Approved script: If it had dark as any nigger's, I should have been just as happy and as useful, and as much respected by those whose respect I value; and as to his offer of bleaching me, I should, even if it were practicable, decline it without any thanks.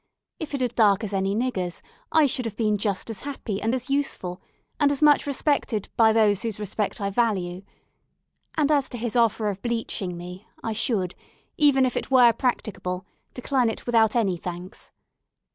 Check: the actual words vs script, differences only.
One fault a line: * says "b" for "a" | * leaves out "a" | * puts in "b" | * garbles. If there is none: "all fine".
all fine